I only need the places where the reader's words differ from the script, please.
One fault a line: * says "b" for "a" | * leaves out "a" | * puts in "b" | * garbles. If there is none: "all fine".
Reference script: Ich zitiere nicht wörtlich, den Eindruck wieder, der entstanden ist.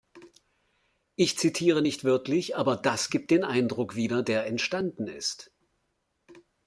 * puts in "aber das gibt"